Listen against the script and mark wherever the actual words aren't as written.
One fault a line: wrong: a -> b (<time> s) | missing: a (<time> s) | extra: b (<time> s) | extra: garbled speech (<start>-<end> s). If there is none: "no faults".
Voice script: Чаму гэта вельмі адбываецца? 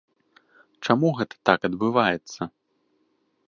wrong: вельмі -> так (1.5 s)